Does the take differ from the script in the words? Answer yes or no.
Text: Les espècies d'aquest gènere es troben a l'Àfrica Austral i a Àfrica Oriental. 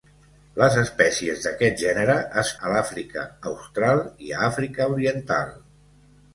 yes